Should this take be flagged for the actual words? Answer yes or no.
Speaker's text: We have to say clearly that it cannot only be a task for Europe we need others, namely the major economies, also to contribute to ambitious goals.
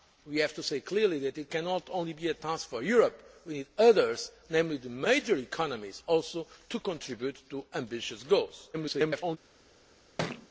yes